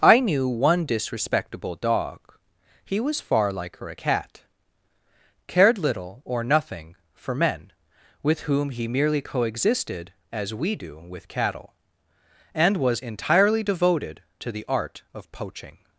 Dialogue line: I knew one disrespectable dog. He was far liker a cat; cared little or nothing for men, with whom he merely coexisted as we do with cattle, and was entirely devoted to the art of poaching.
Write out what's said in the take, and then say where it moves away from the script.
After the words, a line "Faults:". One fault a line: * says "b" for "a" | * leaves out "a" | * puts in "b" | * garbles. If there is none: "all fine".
I knew one disrespectable dog. He was far liker a cat; cared little or nothing for men, with whom he merely coexisted as we do with cattle, and was entirely devoted to the art of poaching.
Faults:
all fine